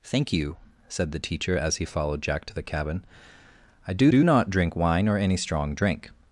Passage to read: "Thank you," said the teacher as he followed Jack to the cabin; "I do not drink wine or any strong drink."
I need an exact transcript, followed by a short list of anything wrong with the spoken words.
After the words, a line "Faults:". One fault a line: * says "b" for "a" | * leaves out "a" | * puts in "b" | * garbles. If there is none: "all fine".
"Thank you," said the teacher as he followed Jack to the cabin; "I do do not drink wine or any strong drink."
Faults:
* puts in "do"